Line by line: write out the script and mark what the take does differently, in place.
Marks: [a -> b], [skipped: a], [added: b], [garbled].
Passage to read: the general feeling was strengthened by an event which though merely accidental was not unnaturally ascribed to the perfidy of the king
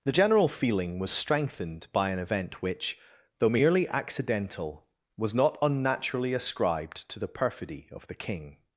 the general feeling was strengthened by an event which though merely accidental was not unnaturally ascribed to the perfidy of the king